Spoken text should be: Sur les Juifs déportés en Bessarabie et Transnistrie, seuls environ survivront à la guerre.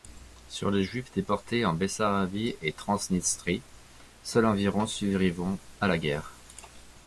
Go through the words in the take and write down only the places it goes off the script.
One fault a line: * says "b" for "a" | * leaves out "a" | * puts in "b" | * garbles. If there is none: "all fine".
all fine